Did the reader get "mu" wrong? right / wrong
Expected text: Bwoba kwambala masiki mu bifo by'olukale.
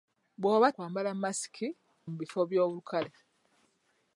right